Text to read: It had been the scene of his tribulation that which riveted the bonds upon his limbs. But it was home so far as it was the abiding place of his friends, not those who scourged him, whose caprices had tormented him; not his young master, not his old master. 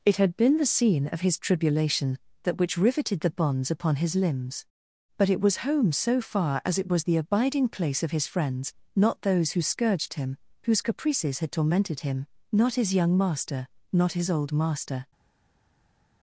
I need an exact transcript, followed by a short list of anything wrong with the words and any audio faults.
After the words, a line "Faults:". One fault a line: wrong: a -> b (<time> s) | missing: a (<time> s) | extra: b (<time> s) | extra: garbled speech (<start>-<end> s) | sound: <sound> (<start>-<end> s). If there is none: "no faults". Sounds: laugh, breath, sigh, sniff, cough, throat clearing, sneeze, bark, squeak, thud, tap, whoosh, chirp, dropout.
It had been the scene of his tribulation that which riveted the bonds upon his limbs. But it was home so far as it was the abiding place of his friends, not those who scourged him, whose caprices had tormented him; not his young master, not his old master.
Faults:
no faults